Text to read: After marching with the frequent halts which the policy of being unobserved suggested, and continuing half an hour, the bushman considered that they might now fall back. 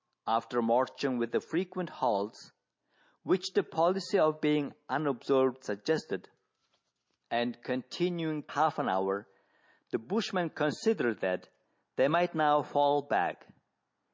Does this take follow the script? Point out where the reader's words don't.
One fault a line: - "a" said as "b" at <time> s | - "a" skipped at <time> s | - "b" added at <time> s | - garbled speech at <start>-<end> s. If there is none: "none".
none